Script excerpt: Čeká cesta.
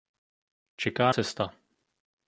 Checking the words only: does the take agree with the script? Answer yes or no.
yes